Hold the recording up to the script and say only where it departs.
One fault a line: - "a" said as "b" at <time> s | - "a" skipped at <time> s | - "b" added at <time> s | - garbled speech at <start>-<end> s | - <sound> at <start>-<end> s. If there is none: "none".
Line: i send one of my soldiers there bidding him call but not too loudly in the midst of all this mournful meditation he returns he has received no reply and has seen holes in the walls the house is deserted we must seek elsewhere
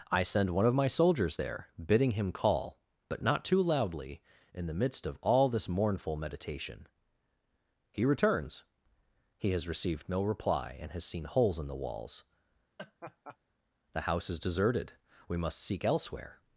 - laugh at 12.8-13.4 s